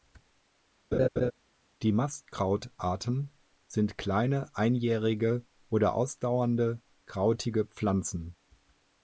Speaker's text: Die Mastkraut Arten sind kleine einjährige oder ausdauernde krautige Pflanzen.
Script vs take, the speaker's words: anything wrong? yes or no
no